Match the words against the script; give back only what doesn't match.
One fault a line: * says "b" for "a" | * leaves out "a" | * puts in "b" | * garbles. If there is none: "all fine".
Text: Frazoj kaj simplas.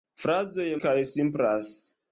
all fine